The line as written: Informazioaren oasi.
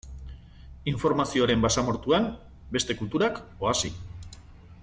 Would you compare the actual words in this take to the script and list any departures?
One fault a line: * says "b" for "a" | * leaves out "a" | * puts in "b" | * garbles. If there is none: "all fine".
* puts in "basamortuan beste kulturak"